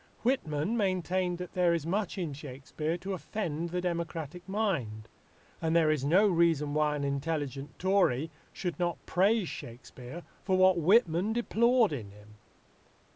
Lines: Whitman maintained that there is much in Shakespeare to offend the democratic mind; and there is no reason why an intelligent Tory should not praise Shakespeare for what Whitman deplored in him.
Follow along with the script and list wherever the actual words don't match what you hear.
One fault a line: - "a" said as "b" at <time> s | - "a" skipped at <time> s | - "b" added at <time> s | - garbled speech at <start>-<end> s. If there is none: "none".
none